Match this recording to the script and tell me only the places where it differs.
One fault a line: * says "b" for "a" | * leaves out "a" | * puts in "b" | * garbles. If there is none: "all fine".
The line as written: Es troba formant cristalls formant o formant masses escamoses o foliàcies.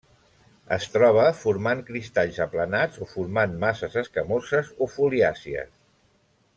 * says "aplanats" for "formant"